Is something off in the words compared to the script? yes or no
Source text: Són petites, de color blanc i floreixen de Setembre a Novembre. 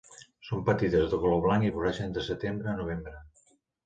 no